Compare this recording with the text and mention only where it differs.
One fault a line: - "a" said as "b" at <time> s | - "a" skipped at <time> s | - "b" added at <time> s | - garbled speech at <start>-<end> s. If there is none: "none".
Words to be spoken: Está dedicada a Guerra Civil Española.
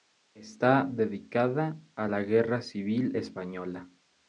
- "la" added at 2.0 s